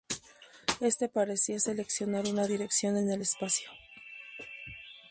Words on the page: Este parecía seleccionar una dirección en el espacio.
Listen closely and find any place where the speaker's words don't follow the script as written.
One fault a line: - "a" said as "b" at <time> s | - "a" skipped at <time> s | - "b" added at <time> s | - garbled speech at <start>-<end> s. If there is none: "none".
none